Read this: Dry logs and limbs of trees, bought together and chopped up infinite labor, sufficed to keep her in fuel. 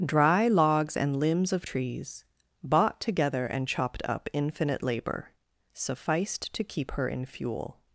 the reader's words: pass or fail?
pass